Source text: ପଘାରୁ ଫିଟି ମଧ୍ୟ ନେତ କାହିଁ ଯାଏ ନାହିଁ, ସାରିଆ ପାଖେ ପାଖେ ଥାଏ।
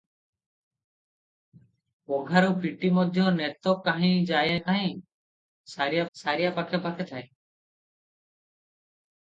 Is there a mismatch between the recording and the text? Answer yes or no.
yes